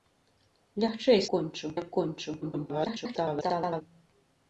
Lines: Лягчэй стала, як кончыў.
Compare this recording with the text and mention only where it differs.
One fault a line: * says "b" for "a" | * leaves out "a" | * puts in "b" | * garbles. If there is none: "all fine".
* says "кончыў" for "стала"
* garbles